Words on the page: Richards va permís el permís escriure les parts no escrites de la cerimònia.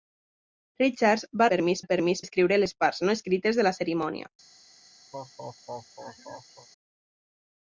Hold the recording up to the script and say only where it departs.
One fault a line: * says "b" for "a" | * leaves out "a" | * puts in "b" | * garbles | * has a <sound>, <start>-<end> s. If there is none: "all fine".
* has a laugh, 5.1-6.7 s